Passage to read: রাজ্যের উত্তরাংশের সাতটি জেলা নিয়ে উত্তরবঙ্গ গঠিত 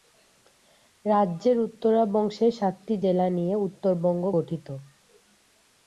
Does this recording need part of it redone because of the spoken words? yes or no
no